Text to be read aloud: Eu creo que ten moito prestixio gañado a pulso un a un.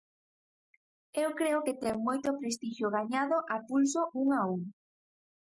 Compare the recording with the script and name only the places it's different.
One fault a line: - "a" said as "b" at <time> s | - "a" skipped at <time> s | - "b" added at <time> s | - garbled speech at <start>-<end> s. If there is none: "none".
none